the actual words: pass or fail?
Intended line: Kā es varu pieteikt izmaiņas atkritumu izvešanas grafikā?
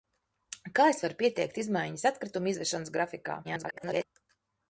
fail